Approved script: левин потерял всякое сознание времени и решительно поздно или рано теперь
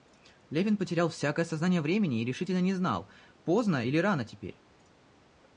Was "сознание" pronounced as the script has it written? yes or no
yes